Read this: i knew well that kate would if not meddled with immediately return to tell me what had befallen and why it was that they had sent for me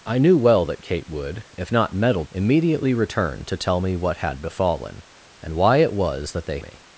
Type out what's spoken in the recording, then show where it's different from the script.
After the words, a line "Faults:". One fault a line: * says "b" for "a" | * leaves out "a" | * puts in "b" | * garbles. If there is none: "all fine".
i knew well that kate would if not meddled immediately return to tell me what had befallen and why it was that they me
Faults:
* leaves out "with"
* leaves out "had sent for"